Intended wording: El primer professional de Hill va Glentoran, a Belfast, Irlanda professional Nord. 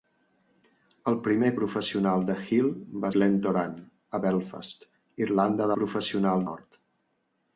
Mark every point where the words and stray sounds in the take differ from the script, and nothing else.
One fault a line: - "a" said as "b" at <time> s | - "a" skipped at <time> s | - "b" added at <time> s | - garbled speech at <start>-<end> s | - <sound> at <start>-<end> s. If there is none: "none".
none